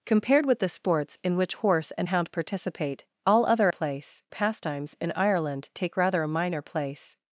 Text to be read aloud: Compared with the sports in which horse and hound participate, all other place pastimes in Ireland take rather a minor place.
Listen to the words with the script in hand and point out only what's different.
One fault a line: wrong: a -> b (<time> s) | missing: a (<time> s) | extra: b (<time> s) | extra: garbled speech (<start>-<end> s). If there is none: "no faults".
no faults